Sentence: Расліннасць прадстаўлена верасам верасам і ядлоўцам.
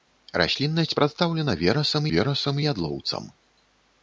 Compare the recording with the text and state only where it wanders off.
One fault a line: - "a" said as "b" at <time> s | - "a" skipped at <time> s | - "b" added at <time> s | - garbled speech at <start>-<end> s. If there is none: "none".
none